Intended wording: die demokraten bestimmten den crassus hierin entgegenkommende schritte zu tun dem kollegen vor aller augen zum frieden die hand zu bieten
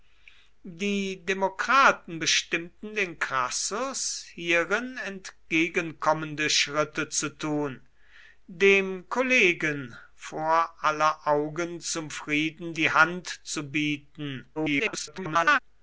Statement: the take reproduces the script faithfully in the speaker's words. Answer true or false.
false